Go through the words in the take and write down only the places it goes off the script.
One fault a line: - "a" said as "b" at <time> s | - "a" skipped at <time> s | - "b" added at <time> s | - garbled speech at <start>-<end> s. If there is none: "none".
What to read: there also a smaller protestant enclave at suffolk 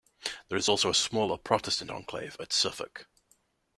- "is" added at 0.6 s